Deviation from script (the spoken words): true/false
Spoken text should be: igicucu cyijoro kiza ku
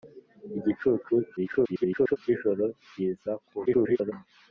true